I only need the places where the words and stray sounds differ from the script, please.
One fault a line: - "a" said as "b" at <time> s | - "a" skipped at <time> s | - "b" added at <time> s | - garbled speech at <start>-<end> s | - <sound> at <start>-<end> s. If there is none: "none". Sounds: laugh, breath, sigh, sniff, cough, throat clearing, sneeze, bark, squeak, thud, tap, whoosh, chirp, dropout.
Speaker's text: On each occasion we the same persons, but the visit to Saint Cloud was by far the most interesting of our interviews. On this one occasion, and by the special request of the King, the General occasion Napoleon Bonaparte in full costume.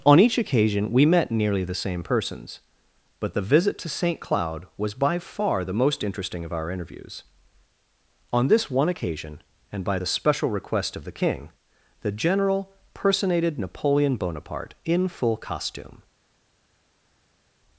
- "met nearly" added at 1.1 s
- "occasion" said as "personated" at 12.9 s